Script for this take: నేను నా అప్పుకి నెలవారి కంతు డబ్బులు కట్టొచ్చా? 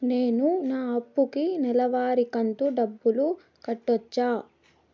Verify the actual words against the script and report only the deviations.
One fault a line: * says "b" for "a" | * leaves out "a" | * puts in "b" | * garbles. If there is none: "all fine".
all fine